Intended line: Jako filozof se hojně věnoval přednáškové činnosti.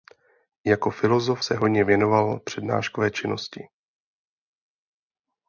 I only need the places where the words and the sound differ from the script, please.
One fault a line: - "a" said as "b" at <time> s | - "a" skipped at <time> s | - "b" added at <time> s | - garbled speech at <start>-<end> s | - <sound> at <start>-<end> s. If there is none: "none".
none